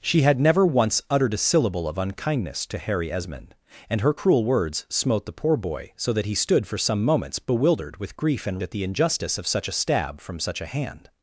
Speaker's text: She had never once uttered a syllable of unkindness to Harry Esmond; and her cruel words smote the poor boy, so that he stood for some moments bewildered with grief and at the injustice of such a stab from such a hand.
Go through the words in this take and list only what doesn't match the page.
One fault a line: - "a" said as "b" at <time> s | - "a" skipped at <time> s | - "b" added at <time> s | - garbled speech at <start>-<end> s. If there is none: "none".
none